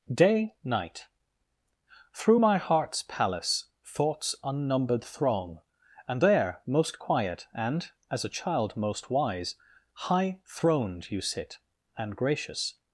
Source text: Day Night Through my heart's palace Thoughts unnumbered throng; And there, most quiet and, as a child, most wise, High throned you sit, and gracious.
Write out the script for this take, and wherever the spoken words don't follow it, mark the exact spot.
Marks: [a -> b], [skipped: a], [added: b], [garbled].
Day Night Through my heart's palace Thoughts unnumbered throng; And there, most quiet and, as a child, most wise, High throned you sit, and gracious.